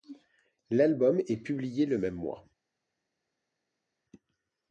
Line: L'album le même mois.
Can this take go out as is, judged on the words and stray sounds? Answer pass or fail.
fail